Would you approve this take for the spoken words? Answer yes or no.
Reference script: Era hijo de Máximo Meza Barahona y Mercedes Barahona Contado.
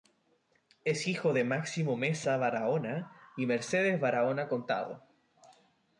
no